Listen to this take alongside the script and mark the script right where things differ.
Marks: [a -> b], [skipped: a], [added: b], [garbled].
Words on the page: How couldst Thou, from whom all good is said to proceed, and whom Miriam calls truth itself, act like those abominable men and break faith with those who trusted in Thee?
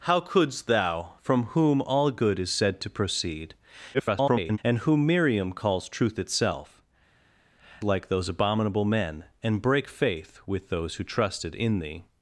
How couldst Thou, from whom all good is said to proceed, [garbled] and whom Miriam calls truth itself, [skipped: act] like those abominable men and break faith with those who trusted in Thee?